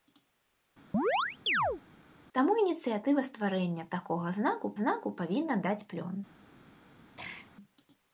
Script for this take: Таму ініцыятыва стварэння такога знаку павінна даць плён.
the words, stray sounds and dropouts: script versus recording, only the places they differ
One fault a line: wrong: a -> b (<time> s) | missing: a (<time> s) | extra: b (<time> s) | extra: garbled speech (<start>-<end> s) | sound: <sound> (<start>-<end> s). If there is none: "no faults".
sound: chirp (0.9-1.8 s)
extra: знаку (4.8 s)
sound: throat clearing (7.2-7.5 s)